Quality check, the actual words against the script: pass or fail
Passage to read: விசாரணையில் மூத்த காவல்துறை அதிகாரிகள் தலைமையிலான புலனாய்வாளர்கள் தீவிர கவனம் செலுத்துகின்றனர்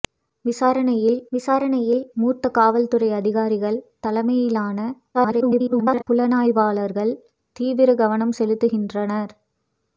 fail